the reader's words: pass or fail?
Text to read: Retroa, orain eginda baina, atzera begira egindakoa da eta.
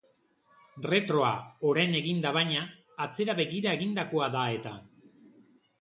pass